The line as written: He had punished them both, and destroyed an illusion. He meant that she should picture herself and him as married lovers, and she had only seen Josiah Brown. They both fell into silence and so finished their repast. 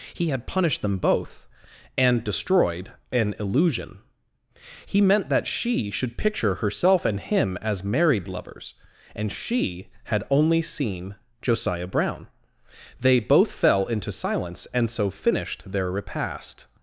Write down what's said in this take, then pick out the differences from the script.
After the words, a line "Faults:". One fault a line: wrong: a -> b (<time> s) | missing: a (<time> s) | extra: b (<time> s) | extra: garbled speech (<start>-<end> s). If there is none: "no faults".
He had punished them both, and destroyed an illusion. He meant that she should picture herself and him as married lovers, and she had only seen Josiah Brown. They both fell into silence and so finished their repast.
Faults:
no faults